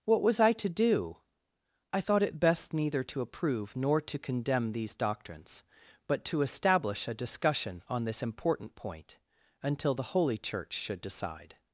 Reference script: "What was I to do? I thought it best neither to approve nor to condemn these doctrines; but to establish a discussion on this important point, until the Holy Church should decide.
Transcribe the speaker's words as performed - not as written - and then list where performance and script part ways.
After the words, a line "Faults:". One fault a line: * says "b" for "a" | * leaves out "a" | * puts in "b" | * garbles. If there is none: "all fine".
"What was I to do? I thought it best neither to approve nor to condemn these doctrines; but to establish a discussion on this important point, until the Holy Church should decide.
Faults:
all fine